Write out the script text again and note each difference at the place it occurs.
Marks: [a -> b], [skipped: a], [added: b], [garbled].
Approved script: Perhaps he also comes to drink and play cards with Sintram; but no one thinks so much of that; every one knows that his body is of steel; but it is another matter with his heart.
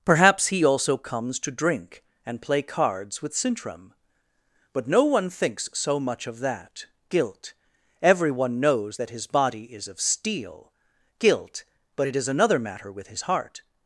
Perhaps he also comes to drink and play cards with Sintram; but no one thinks so much of that; [every one -> guilt everyone] knows that his body is of steel; [added: guilt] but it is another matter with his heart.